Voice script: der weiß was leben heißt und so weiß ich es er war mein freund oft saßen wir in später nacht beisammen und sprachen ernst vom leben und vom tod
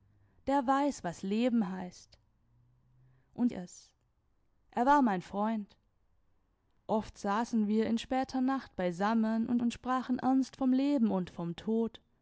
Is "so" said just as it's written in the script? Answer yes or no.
no